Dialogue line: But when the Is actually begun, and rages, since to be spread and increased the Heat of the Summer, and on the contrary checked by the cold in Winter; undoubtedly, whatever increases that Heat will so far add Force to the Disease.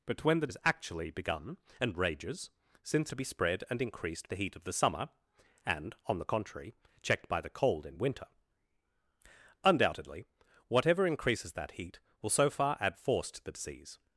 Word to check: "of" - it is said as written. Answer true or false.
true